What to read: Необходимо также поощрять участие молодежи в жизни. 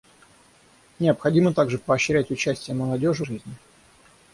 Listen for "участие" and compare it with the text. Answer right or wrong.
right